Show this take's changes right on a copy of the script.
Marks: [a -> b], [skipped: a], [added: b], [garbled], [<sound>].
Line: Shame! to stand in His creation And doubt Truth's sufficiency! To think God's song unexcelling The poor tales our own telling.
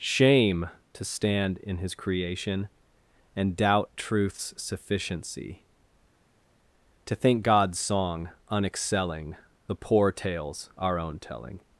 Shame! to stand in His creation And doubt Truth's sufficiency! To think God's song unexcelling The poor tales our own telling.